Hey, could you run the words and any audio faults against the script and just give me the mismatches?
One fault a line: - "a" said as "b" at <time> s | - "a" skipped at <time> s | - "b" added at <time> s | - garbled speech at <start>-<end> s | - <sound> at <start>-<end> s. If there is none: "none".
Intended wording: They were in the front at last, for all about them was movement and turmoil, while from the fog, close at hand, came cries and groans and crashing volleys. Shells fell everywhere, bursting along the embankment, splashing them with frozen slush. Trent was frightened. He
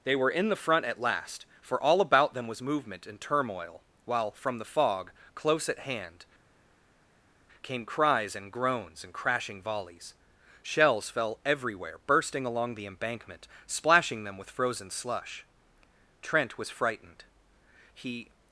none